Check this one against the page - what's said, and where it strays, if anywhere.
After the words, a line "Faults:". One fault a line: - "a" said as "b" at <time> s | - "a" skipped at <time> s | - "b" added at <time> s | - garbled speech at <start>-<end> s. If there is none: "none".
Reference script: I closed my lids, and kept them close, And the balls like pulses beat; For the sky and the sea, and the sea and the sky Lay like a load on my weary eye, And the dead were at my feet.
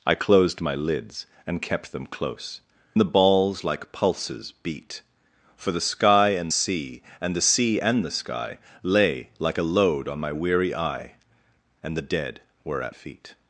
I closed my lids, and kept them close, The balls like pulses beat; For the sky and sea, and the sea and the sky Lay like a load on my weary eye, And the dead were at feet.
Faults:
- "And" skipped at 2.6 s
- "the" skipped at 6.5 s
- "my" skipped at 12.9 s